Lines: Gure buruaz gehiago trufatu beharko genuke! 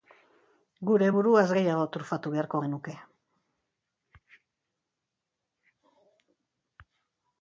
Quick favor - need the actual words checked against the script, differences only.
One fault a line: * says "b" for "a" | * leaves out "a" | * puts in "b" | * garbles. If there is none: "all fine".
all fine